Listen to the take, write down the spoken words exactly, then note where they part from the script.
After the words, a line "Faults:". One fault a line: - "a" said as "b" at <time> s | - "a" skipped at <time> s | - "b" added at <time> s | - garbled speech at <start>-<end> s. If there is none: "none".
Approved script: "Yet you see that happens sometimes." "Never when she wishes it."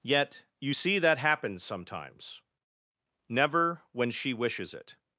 "Yet you see that happens sometimes." "Never when she wishes it."
Faults:
none